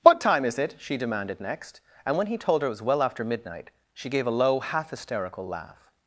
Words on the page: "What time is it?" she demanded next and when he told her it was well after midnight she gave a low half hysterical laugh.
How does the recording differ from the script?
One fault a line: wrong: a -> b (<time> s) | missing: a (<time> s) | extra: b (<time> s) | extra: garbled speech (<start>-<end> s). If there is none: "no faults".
no faults